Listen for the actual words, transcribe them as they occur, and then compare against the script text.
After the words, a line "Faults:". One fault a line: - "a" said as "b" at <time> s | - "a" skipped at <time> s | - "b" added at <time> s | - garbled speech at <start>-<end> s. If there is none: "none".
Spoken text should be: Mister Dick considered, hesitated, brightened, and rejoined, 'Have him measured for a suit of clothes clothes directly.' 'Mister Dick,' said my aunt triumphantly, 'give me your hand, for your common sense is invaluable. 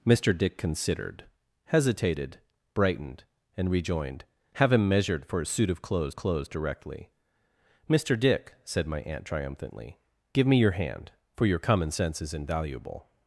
Mister Dick considered, hesitated, brightened, and rejoined, 'Have him measured for a suit of clothes clothes directly.' 'Mister Dick,' said my aunt triumphantly, 'give me your hand, for your common sense is invaluable.
Faults:
none